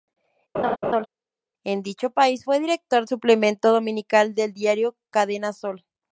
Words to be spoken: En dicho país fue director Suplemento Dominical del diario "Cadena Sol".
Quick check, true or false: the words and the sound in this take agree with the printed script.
false